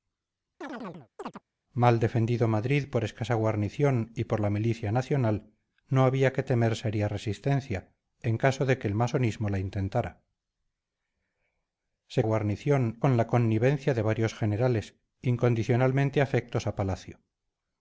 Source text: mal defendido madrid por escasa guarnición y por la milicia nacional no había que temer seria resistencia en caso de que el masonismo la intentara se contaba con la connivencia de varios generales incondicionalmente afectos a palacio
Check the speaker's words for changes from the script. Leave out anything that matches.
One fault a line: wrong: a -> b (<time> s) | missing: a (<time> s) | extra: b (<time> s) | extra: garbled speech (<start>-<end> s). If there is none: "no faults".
wrong: contaba -> guarnición (12.2 s)